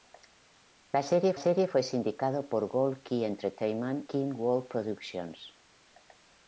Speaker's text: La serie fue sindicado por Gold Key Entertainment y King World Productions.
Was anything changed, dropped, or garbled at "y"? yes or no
yes